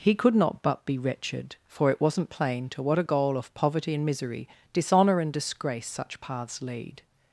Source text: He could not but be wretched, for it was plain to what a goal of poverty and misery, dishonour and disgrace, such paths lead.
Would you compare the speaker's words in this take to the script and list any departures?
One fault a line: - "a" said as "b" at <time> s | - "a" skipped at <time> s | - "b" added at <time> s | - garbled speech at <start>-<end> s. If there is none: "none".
- "was" said as "wasn't" at 2.0 s